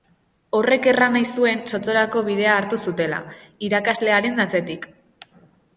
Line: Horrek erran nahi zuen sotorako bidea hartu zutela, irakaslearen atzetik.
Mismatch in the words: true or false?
false